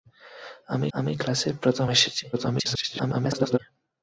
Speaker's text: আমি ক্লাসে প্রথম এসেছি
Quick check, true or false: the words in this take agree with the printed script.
false